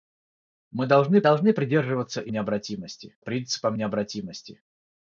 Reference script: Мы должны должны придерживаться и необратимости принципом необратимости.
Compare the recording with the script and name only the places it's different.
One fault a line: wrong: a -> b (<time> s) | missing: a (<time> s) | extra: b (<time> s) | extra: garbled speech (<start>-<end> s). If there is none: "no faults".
no faults